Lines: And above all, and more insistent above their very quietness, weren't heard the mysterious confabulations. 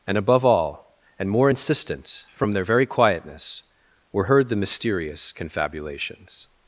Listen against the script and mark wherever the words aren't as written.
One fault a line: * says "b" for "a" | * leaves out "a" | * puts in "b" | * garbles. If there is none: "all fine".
* says "from" for "above"
* says "were" for "weren't"